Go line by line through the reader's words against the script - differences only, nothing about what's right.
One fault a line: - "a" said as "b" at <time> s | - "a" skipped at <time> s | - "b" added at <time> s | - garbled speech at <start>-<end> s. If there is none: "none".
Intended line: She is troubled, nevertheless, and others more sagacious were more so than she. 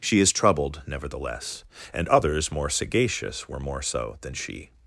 none